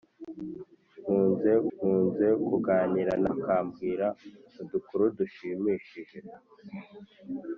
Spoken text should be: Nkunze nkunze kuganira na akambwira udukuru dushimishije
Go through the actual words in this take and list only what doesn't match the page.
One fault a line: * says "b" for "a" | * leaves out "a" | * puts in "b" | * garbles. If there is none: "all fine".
all fine